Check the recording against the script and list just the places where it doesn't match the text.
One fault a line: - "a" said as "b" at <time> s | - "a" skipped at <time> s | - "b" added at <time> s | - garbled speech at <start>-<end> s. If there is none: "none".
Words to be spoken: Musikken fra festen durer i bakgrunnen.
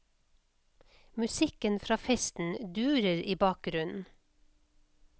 none